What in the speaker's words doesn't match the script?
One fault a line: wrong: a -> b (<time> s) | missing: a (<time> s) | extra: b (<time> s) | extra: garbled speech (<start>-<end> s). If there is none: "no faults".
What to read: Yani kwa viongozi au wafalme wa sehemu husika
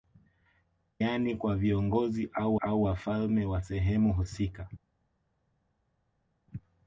extra: au (2.6 s)